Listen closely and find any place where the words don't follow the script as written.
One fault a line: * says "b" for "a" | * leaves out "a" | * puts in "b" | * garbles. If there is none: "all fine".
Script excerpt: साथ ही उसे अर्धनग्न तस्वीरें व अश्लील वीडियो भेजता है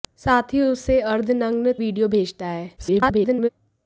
* leaves out "तस्वीरें व अश्लील"
* garbles